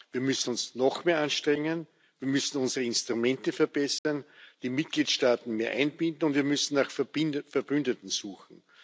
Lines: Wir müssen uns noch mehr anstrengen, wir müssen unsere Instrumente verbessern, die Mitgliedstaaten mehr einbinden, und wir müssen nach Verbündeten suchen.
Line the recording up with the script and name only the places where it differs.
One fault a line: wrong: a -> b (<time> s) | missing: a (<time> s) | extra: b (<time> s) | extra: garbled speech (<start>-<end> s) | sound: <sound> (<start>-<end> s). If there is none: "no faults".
sound: dropout (4.0-4.1 s)